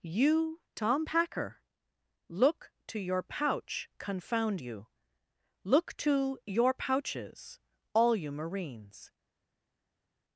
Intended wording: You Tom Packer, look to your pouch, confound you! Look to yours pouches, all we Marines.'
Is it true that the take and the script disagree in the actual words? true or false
true